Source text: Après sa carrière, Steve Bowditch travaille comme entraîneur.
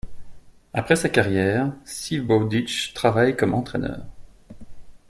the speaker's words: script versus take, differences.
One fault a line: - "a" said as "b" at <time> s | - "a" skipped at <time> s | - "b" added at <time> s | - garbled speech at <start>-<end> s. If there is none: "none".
none